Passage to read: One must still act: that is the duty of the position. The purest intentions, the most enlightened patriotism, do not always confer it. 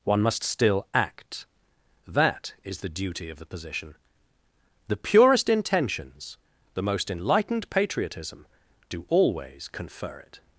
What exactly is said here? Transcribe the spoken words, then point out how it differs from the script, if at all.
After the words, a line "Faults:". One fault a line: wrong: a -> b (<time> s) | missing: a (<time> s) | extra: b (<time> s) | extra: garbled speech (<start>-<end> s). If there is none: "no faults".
One must still act: that is the duty of the position. The purest intentions, the most enlightened patriotism, do always confer it.
Faults:
missing: not (9.1 s)